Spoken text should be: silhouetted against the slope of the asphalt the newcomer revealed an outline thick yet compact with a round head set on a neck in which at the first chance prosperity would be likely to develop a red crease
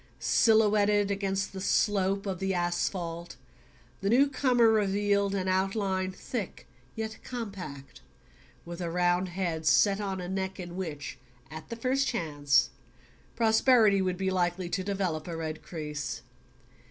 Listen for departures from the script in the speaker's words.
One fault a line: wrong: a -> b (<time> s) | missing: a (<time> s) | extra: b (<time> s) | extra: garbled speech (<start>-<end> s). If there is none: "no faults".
no faults